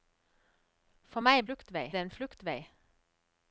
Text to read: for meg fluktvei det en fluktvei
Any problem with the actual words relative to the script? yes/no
no